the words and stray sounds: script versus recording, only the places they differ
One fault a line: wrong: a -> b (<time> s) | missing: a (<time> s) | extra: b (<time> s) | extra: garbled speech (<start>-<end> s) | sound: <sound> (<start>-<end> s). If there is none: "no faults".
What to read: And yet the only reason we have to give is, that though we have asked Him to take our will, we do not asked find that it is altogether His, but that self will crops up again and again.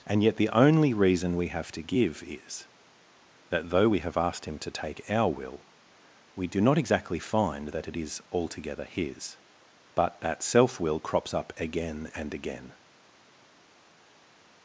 wrong: asked -> exactly (6.8 s)